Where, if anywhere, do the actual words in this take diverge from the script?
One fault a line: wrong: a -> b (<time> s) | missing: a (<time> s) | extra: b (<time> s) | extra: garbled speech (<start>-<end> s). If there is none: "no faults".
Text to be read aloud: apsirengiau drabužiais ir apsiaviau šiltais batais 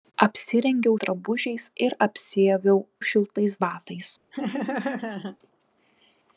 no faults